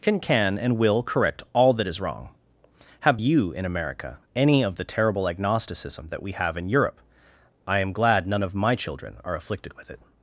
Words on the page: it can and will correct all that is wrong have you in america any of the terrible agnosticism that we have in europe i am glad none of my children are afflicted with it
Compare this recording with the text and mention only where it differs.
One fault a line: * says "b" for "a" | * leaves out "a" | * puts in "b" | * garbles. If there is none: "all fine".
* says "can" for "it"